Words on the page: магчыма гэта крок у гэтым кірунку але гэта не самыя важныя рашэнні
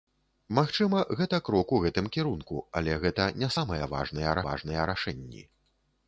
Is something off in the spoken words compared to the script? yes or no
yes